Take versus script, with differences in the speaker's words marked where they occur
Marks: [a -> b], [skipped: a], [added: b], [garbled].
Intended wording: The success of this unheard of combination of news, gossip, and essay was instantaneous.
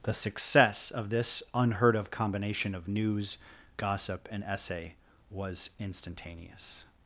The success of this unheard of combination of news, gossip, and essay was instantaneous.